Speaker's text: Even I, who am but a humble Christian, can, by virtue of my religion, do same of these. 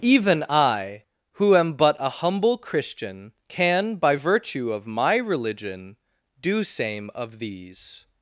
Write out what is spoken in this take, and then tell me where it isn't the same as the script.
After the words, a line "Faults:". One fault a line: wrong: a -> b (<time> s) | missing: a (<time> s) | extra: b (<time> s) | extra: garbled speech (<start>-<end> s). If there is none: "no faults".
Even I, who am but a humble Christian, can, by virtue of my religion, do same of these.
Faults:
no faults